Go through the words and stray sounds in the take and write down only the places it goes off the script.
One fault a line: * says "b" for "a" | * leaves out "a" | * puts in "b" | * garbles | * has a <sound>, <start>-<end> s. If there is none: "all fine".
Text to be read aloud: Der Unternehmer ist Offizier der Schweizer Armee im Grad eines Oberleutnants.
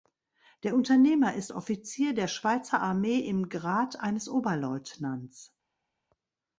all fine